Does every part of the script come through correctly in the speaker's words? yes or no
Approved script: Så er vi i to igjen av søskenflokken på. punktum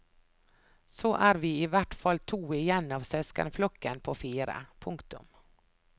no